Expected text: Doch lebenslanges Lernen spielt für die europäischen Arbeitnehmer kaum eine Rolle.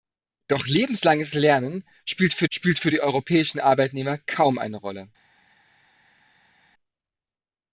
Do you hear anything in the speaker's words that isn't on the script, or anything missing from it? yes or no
yes